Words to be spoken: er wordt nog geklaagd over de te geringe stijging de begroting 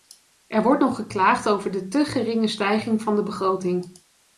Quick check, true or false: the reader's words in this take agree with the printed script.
false